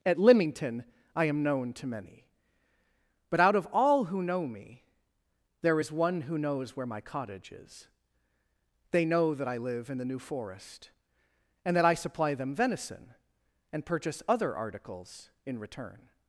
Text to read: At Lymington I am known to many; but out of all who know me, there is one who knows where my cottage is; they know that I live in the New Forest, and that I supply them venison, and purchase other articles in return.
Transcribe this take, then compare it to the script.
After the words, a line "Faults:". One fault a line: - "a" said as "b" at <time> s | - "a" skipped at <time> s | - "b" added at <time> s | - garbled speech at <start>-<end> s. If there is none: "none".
At Lymington I am known to many; but out of all who know me, there is one who knows where my cottage is; they know that I live in the New Forest, and that I supply them venison, and purchase other articles in return.
Faults:
none